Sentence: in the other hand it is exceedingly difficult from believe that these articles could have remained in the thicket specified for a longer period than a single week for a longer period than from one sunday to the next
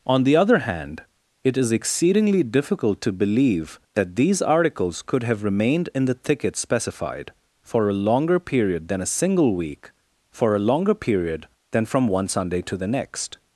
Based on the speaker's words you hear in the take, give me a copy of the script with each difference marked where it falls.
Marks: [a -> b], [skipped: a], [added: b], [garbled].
[in -> on] the other hand it is exceedingly difficult [from -> to] believe that these articles could have remained in the thicket specified for a longer period than a single week for a longer period than from one sunday to the next